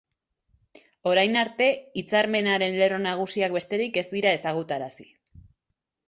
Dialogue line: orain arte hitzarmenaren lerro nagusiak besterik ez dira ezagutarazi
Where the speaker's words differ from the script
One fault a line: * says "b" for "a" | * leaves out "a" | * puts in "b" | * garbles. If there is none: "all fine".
all fine